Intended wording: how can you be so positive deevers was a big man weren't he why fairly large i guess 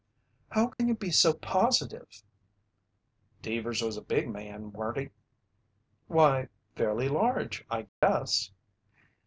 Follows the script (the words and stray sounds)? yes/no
no